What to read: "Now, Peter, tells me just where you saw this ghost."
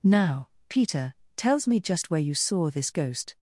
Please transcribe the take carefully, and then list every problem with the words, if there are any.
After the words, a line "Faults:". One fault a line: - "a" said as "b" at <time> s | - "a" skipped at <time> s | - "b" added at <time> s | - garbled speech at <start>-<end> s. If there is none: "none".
"Now, Peter, tells me just where you saw this ghost."
Faults:
none